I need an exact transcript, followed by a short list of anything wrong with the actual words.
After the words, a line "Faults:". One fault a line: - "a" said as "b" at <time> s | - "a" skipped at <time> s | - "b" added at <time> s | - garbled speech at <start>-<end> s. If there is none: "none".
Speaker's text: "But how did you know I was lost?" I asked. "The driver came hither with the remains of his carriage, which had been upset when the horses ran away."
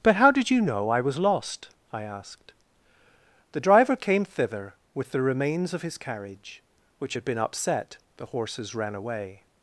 "But how did you know I was lost?" I asked. "The driver came thither with the remains of his carriage, which had been upset the horses ran away."
Faults:
- "hither" said as "thither" at 4.2 s
- "when" skipped at 8.0 s